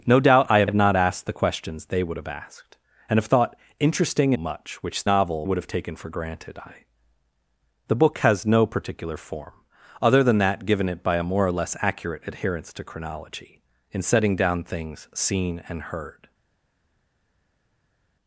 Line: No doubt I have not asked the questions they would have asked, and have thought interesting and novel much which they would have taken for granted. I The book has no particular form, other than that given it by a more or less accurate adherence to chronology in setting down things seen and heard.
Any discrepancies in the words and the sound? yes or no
yes